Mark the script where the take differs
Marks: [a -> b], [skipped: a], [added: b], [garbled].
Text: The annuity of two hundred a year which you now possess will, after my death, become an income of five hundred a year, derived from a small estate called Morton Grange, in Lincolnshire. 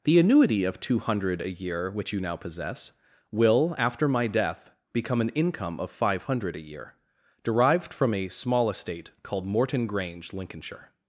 The annuity of two hundred a year which you now possess will, after my death, become an income of five hundred a year, derived from a small estate called Morton Grange, [skipped: in] Lincolnshire.